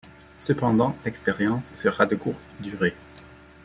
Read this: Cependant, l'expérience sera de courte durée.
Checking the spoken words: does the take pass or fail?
pass